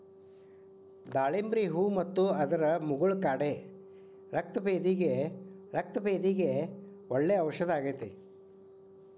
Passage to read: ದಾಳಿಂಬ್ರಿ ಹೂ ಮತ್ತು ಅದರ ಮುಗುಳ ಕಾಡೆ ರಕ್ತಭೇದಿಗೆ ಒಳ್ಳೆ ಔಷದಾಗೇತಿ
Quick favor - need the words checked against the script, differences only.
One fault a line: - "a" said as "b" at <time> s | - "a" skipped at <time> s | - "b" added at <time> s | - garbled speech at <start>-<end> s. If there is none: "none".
- "ರಕ್ತಭೇದಿಗೆ" added at 5.7 s